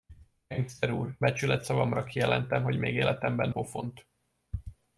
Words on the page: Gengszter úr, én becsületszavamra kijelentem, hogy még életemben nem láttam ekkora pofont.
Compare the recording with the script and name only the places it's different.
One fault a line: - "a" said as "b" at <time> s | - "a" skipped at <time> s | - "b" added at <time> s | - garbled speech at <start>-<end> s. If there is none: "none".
- "én" skipped at 1.2 s
- "nem láttam ekkora" skipped at 3.5 s